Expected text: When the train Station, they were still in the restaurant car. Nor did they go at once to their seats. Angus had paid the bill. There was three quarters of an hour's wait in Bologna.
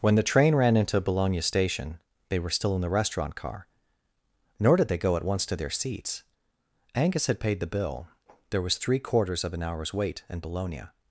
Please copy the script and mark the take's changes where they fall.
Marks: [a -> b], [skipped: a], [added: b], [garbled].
When the train [added: ran into Bologna] Station, they were still in the restaurant car. Nor did they go at once to their seats. Angus had paid the bill. There was three quarters of an hour's wait in Bologna.